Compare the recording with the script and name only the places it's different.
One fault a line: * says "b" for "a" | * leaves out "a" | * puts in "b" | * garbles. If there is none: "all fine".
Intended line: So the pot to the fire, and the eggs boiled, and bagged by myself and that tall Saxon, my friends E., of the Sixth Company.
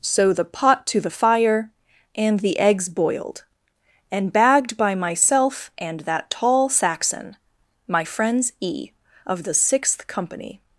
all fine